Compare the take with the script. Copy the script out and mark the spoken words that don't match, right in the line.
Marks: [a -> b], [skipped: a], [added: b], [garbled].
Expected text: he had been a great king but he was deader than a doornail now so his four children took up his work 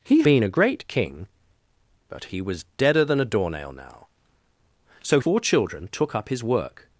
he [skipped: had] been a great king but he was deader than a doornail now so [skipped: his] four children took up his work